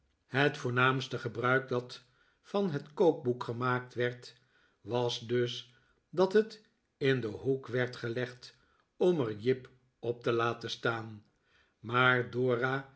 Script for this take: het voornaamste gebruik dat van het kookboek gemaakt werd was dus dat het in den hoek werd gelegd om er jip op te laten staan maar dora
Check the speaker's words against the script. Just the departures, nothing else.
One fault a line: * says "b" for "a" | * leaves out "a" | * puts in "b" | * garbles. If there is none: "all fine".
all fine